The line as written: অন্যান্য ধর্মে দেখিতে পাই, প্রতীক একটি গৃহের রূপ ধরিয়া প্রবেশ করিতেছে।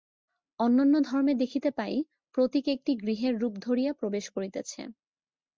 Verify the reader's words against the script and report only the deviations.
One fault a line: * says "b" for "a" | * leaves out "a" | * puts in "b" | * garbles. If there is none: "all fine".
all fine